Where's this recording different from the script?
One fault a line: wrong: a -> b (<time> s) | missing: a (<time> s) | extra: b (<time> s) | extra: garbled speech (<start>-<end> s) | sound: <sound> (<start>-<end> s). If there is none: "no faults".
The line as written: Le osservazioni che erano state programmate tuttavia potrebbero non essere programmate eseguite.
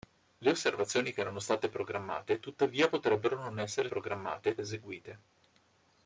no faults